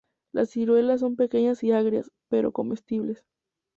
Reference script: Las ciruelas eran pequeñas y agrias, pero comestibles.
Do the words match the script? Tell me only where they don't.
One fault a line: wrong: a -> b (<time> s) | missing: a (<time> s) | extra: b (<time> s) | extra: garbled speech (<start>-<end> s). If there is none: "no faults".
wrong: eran -> son (1.0 s)